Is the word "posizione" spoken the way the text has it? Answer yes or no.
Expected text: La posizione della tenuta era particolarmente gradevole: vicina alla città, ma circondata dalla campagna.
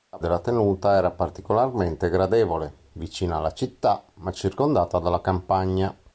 no